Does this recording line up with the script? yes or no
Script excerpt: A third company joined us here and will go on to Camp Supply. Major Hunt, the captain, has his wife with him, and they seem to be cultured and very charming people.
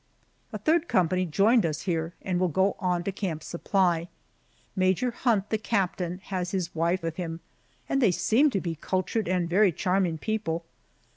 yes